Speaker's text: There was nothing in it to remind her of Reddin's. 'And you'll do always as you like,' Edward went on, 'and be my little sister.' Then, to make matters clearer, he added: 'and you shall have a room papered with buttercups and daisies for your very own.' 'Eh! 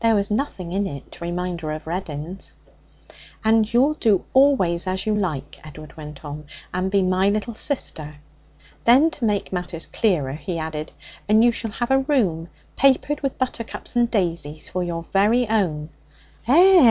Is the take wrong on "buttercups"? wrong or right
right